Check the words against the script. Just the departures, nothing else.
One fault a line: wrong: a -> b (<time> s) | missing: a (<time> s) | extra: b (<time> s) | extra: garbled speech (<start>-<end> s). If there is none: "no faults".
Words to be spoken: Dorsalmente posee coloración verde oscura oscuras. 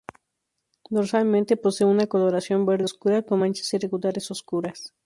extra: una (1.9 s)
extra: con manchas irregulares (3.2 s)